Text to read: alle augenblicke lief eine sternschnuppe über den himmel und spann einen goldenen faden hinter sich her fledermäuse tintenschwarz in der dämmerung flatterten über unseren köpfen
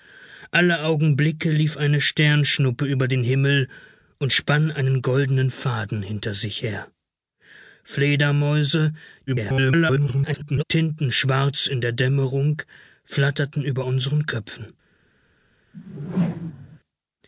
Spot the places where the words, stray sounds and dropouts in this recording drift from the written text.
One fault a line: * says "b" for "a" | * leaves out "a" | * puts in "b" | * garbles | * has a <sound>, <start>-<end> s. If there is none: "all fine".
* garbles
* has a whoosh, 15.7-16.8 s